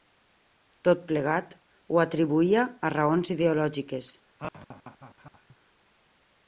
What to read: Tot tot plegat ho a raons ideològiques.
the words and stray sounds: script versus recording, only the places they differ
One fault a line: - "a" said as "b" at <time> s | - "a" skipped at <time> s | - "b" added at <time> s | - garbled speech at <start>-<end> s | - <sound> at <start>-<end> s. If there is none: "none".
- "tot" skipped at 1.0 s
- "atribuïa" added at 2.0 s
- laugh at 4.4-5.6 s